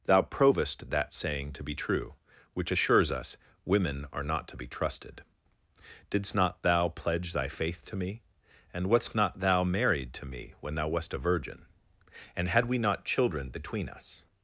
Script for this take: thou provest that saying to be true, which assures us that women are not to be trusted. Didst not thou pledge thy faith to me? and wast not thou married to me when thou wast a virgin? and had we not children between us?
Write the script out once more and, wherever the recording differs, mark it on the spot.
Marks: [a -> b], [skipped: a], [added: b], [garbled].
thou provest that saying to be true, which assures us [skipped: that] women are not to be trusted. Didst not thou pledge thy faith to me? and wast not thou married to me when thou wast a virgin? and had we not children between us?